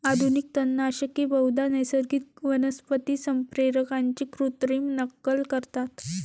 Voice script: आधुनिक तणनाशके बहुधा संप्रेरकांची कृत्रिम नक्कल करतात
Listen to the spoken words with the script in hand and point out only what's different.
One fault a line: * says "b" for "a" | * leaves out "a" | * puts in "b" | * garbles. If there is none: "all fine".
* puts in "नैसर्गिक वनस्पती"